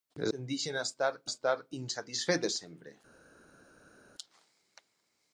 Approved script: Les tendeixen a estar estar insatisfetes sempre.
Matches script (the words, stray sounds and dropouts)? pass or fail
pass